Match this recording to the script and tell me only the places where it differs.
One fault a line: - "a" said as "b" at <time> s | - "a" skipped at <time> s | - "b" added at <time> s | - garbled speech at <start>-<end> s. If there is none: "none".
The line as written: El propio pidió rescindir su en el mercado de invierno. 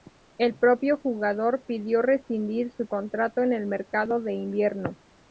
- "jugador" added at 1.0 s
- "contrato" added at 2.9 s